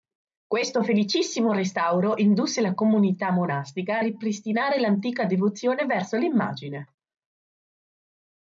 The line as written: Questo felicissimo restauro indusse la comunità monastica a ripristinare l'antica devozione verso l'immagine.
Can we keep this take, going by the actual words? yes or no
yes